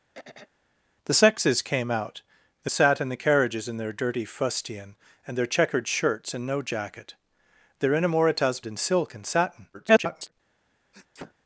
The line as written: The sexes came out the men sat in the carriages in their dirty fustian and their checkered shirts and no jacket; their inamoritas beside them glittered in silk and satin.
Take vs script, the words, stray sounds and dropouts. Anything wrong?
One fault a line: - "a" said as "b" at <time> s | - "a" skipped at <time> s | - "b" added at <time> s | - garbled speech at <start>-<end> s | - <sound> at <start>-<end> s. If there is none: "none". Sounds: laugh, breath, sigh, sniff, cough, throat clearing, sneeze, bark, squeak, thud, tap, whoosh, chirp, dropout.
- throat clearing at 0.1-0.5 s
- "men" skipped at 2.7 s
- "beside them glittered" skipped at 8.6 s
- garbled speech at 9.7-10.3 s
- sneeze at 10.9-11.3 s